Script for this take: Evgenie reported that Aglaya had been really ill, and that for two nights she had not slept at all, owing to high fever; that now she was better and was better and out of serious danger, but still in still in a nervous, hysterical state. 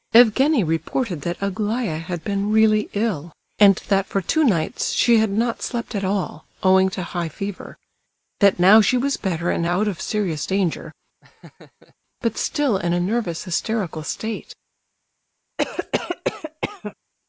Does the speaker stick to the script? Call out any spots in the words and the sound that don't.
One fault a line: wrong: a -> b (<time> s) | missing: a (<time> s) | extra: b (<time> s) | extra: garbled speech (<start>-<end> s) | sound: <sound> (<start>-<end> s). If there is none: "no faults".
missing: was better and (9.6 s)
sound: laugh (11.2-11.9 s)
missing: still in (12.9 s)
sound: cough (15.6-16.9 s)